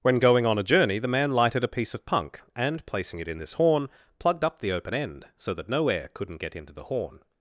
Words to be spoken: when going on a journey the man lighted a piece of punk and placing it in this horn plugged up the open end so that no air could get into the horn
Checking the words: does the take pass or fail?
fail